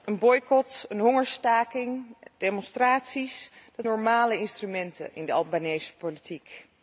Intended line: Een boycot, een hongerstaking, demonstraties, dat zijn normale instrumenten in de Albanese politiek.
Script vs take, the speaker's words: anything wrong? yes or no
yes